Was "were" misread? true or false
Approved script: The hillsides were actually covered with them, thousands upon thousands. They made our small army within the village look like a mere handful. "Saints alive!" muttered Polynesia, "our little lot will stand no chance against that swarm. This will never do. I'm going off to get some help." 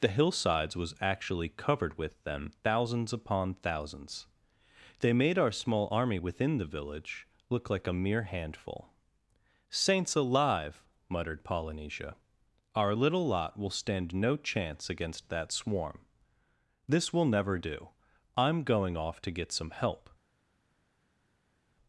true